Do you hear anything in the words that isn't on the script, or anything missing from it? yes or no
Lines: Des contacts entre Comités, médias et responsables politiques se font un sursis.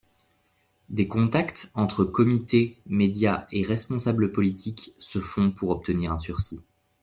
yes